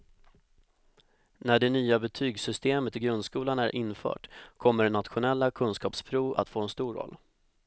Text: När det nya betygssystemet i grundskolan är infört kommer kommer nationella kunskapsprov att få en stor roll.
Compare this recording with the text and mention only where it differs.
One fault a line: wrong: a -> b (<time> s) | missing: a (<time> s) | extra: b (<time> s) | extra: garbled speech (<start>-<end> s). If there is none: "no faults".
missing: kommer (4.9 s)